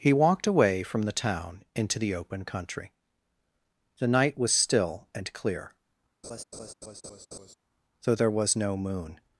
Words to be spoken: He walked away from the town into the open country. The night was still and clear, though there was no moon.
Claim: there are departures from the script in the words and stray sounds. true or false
true